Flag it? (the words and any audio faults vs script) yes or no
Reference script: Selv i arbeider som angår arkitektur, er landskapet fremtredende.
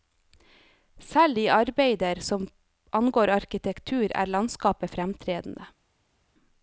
no